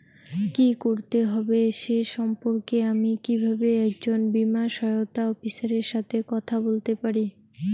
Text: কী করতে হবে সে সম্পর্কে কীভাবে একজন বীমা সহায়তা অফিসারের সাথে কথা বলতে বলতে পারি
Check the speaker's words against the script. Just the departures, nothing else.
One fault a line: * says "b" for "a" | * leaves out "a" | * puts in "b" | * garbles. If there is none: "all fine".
* puts in "আমি"
* leaves out "বলতে"